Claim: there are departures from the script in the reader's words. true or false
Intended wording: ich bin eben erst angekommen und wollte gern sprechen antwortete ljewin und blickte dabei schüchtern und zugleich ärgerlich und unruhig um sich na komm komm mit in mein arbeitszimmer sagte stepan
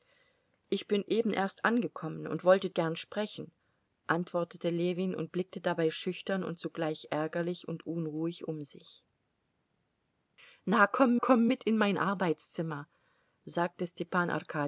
false